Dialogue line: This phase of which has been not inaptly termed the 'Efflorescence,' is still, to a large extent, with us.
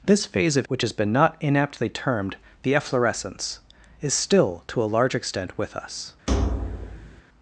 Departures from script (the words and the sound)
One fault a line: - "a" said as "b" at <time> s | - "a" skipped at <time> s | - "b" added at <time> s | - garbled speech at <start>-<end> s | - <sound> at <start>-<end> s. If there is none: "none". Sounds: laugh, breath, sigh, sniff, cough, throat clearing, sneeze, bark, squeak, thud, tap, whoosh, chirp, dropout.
- thud at 6.3-7.2 s